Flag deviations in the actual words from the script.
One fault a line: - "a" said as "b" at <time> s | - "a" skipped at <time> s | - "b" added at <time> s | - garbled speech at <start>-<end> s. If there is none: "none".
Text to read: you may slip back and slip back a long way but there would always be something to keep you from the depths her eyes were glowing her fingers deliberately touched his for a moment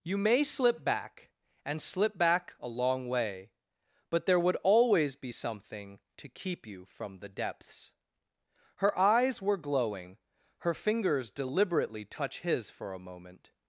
- "touched" said as "touch" at 12.1 s